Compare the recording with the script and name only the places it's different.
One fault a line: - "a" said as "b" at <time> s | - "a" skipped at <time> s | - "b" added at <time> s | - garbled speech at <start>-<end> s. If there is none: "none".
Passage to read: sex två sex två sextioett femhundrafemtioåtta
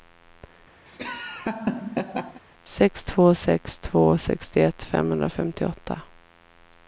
none